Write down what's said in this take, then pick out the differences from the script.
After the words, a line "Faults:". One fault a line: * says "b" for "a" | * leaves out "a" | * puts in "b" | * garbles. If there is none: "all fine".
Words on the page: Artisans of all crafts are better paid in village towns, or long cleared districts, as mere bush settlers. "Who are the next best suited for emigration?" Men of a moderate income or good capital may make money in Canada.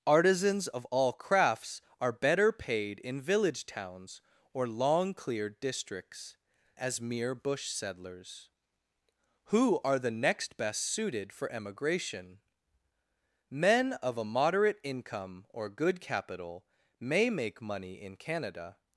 Artisans of all crafts are better paid in village towns, or long cleared districts, as mere bush settlers. "Who are the next best suited for emigration?" Men of a moderate income or good capital may make money in Canada.
Faults:
all fine